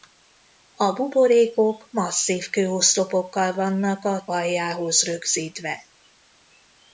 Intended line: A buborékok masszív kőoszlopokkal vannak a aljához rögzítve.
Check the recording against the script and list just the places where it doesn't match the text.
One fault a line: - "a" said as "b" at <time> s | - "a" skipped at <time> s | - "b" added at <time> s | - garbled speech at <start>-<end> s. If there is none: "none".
none